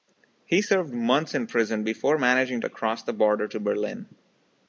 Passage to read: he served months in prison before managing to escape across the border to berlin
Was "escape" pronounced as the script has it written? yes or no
no